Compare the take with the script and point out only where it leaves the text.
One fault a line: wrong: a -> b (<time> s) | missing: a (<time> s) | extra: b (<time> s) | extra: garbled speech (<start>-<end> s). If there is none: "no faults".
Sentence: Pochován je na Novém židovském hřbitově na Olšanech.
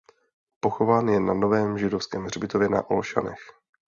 no faults